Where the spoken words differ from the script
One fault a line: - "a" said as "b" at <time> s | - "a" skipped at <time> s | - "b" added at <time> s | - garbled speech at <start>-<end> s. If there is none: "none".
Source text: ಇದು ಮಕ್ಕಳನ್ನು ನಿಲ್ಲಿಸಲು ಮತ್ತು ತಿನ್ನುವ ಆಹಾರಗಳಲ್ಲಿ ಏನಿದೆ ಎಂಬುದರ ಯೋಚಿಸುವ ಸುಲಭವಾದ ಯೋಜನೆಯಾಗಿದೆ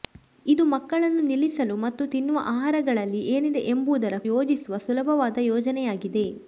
none